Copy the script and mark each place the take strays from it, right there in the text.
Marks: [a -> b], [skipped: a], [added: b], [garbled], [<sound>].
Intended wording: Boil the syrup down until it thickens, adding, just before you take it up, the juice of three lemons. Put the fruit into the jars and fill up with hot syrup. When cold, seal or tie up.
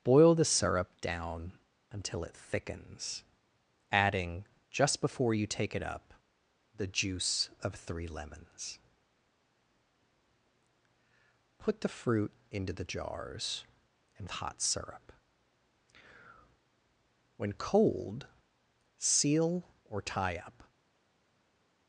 Boil the syrup down until it thickens, adding, just before you take it up, the juice of three lemons. Put the fruit into the jars and [skipped: fill up with] hot syrup. When cold, seal or tie up.